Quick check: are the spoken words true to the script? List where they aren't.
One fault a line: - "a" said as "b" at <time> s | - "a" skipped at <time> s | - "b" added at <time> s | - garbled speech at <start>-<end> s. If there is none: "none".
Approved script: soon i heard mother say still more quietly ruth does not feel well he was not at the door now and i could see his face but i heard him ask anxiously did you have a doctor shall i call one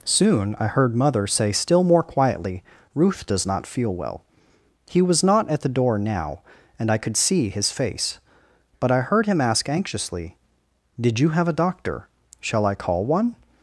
none